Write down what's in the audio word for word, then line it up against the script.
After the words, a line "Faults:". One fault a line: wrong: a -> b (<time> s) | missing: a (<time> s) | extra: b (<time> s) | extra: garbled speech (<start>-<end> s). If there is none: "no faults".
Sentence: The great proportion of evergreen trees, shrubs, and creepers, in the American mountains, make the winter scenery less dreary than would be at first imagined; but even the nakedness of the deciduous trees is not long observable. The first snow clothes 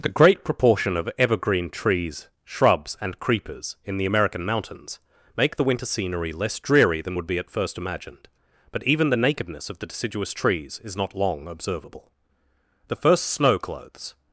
The great proportion of evergreen trees, shrubs, and creepers, in the American mountains, make the winter scenery less dreary than would be at first imagined; but even the nakedness of the deciduous trees is not long observable. The first snow clothes
Faults:
no faults